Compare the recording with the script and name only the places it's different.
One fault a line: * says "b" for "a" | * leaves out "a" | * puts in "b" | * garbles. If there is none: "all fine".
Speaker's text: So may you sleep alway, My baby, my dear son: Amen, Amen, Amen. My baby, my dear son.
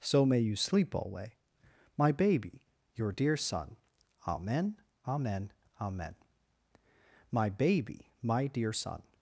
* says "your" for "my"